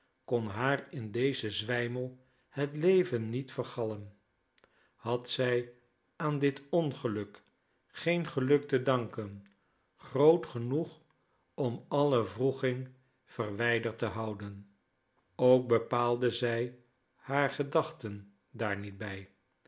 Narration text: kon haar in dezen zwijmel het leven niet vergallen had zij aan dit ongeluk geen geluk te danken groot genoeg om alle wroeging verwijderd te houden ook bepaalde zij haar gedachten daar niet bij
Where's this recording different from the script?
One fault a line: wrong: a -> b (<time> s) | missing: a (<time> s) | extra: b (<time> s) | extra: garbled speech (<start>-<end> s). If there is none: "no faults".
no faults